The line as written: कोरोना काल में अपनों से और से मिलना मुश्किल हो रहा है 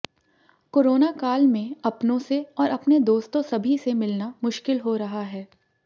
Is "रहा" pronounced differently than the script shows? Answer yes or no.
no